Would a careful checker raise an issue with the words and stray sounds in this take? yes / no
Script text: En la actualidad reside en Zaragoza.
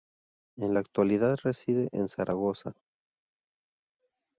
no